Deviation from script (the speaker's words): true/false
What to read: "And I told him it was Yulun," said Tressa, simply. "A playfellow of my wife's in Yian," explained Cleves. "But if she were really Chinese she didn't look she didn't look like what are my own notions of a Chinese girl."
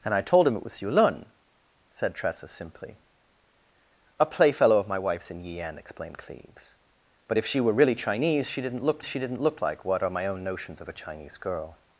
false